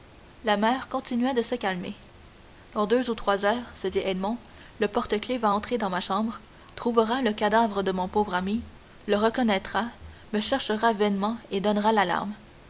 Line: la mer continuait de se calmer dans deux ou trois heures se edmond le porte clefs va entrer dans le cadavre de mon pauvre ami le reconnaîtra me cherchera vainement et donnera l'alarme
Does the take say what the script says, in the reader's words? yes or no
no